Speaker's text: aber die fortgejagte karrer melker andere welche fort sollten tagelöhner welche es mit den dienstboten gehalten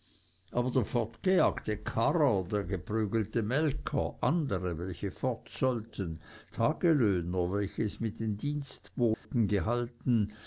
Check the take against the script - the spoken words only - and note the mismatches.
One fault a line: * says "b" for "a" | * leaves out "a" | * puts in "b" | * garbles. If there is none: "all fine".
* says "der" for "die"
* puts in "der geprügelte"